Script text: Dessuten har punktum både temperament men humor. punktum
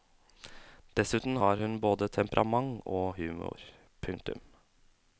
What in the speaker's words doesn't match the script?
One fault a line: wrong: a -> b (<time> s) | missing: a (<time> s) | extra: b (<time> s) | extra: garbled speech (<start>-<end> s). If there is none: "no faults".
wrong: punktum -> hun (1.6 s)
wrong: men -> og (3.0 s)